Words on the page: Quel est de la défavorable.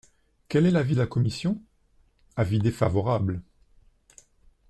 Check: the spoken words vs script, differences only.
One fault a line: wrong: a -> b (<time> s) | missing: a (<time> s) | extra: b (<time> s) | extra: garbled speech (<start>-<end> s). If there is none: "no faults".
extra: l'avis (0.7 s)
extra: commission Avis (1.1 s)